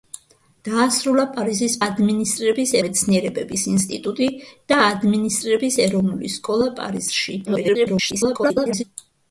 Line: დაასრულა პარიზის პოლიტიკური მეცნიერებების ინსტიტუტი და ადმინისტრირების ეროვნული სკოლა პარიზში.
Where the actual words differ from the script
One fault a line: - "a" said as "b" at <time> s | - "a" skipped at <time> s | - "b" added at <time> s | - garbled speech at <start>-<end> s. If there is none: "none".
- "პოლიტიკური" said as "ადმინისტრირების" at 1.8 s
- garbled speech at 7.4-8.8 s